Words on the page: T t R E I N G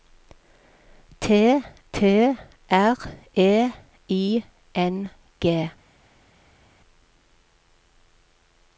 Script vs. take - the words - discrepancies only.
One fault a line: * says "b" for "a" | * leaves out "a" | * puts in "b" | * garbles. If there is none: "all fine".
all fine